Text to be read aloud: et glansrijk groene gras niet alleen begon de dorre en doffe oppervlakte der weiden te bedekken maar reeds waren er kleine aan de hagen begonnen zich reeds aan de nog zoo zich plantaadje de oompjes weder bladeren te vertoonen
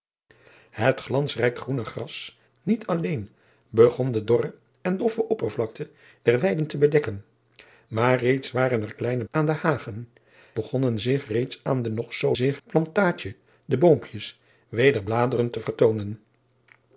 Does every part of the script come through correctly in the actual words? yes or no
yes